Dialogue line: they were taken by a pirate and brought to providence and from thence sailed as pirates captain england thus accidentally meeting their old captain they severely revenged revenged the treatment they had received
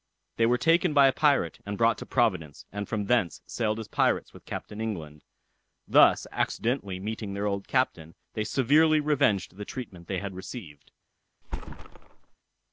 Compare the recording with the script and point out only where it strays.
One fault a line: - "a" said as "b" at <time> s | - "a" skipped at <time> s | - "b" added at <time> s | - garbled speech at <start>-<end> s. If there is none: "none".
- "with" added at 4.3 s
- "revenged" skipped at 9.6 s